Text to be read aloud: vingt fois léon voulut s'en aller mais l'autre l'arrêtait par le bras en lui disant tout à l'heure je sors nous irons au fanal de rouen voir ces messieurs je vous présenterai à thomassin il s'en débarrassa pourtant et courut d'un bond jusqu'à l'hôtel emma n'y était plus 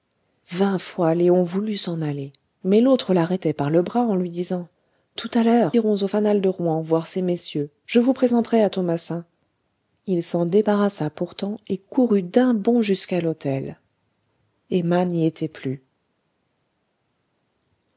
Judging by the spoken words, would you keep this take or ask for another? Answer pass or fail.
fail